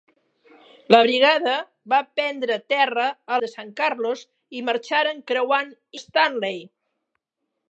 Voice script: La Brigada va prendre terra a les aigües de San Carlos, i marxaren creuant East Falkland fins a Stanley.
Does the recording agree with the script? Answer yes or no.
no